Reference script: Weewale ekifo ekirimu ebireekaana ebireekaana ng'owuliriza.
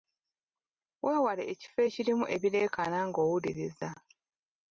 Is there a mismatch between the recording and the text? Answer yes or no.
yes